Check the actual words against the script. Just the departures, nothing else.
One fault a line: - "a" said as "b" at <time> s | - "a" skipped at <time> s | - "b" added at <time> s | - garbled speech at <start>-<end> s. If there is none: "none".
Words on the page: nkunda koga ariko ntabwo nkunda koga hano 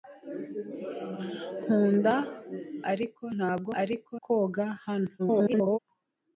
- "koga" skipped at 2.1 s
- "nkunda" said as "ariko" at 3.8 s
- garbled speech at 5.2-5.8 s